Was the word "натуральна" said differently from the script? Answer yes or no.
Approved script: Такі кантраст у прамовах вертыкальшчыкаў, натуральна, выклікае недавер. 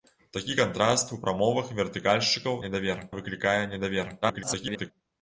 yes